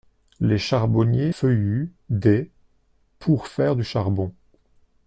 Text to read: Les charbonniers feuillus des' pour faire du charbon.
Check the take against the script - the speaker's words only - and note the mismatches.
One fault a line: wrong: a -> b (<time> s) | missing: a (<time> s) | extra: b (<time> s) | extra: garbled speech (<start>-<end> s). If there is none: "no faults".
no faults